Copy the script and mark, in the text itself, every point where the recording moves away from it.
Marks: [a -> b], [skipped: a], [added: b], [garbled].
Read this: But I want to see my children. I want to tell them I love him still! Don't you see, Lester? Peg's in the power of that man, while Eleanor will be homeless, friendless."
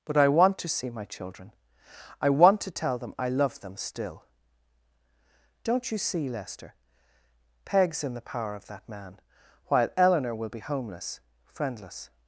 But I want to see my children. I want to tell them I love [him -> them] still! Don't you see, Lester? Peg's in the power of that man, while Eleanor will be homeless, friendless."